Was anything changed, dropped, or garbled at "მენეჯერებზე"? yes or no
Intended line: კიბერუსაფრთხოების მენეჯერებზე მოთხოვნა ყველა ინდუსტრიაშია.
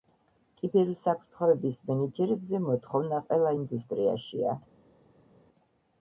no